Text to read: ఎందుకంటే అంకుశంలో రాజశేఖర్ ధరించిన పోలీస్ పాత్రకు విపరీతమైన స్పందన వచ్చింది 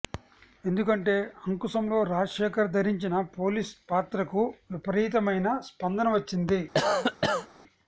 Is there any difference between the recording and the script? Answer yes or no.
no